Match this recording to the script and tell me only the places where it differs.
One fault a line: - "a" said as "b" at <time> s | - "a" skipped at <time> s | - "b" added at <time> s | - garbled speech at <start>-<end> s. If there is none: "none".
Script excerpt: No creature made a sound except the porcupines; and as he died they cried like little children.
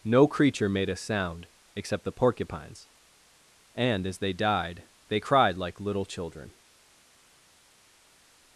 - "he" said as "they" at 4.2 s